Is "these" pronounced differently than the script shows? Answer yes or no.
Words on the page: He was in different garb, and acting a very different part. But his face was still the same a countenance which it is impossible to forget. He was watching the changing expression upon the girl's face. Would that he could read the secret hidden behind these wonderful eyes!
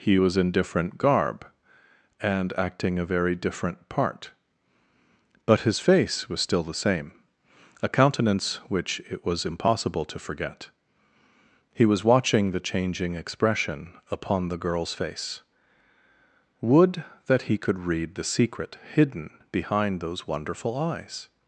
yes